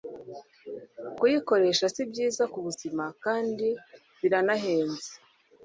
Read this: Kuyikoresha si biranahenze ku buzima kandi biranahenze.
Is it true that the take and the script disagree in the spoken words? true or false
true